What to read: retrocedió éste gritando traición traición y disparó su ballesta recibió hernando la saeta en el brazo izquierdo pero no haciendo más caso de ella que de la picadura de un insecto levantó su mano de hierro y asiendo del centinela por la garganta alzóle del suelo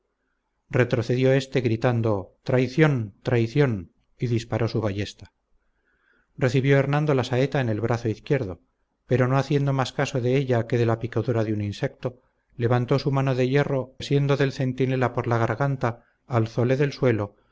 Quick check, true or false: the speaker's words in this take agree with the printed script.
false